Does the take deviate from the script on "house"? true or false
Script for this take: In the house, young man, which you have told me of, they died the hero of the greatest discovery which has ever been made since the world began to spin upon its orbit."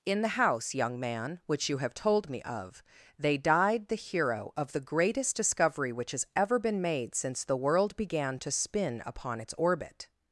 false